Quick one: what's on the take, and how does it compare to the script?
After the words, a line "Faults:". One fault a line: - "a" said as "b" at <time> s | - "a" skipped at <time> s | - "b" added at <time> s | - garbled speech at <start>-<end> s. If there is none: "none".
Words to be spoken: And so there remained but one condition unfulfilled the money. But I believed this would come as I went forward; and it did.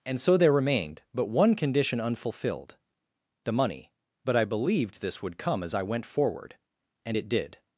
And so there remained but one condition unfulfilled the money. But I believed this would come as I went forward; and it did.
Faults:
none